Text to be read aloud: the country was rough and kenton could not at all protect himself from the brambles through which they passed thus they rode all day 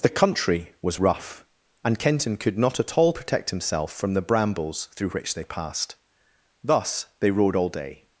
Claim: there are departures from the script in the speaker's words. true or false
false